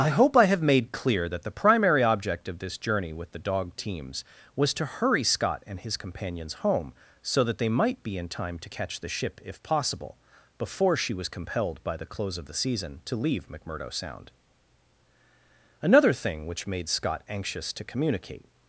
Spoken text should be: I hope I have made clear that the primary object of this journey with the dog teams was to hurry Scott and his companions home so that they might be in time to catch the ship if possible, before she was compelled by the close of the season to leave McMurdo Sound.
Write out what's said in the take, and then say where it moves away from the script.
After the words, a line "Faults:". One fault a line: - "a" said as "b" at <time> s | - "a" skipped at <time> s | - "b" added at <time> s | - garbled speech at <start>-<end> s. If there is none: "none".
I hope I have made clear that the primary object of this journey with the dog teams was to hurry Scott and his companions home so that they might be in time to catch the ship if possible, before she was compelled by the close of the season to leave McMurdo Sound. Another thing which made Scott anxious to communicate
Faults:
- "Another thing which made Scott anxious to communicate" added at 15.8 s